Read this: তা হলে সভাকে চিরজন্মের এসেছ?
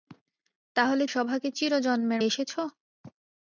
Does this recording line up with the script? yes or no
yes